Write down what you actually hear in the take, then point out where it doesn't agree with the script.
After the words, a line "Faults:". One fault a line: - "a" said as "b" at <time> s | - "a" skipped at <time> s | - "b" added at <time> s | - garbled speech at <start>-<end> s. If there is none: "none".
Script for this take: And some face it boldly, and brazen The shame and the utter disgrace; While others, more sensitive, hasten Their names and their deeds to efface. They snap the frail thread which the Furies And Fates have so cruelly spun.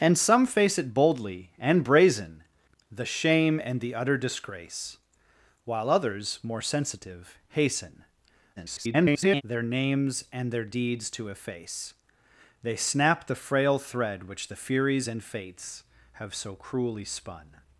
And some face it boldly, and brazen The shame and the utter disgrace; While others, more sensitive, hasten [garbled] Their names and their deeds to efface. They snap the frail thread which the Furies And Fates have so cruelly spun.
Faults:
- garbled speech at 8.6-9.4 s